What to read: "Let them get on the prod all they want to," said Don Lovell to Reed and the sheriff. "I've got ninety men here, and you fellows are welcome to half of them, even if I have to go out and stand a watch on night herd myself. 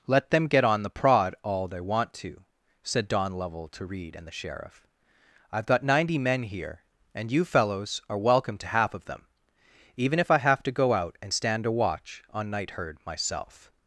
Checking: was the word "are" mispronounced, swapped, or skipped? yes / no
no